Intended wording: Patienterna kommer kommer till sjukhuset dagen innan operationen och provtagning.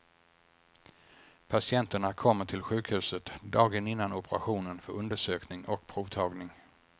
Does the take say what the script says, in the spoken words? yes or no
no